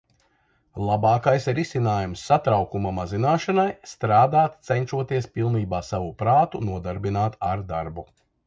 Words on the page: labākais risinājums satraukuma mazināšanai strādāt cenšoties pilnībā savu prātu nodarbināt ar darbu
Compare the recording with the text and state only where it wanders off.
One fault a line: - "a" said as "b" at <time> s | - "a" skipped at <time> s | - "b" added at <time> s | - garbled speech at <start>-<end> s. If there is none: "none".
none